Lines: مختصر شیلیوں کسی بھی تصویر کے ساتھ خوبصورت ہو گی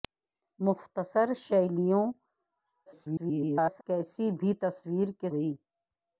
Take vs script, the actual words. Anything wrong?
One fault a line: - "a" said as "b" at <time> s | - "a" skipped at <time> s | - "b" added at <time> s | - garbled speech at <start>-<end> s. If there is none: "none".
- garbled speech at 2.9-3.8 s
- "ساتھ خوبصورت ہو" skipped at 5.3 s